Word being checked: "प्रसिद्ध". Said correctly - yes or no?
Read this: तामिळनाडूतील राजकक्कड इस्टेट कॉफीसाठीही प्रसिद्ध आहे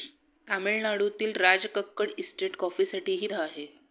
no